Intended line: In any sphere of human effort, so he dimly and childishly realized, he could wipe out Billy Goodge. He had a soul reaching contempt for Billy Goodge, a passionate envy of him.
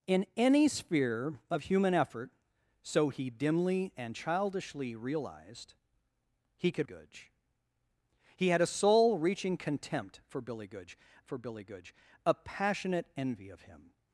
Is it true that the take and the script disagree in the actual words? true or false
true